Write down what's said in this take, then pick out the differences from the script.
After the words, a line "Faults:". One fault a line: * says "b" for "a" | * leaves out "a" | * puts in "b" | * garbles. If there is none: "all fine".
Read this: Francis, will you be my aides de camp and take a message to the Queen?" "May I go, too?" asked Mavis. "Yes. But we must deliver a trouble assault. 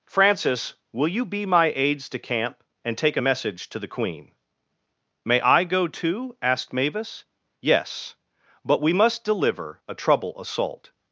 Francis, will you be my aides de camp and take a message to the Queen?" "May I go, too?" asked Mavis. "Yes. But we must deliver a trouble assault.
Faults:
all fine